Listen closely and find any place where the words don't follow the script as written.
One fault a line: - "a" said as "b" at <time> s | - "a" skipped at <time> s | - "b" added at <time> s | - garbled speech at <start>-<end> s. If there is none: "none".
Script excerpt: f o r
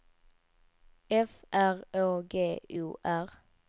- "r å g" added at 1.5 s